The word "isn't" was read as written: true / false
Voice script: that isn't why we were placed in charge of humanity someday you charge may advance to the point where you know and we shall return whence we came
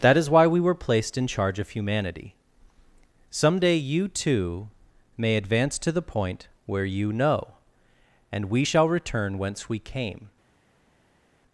false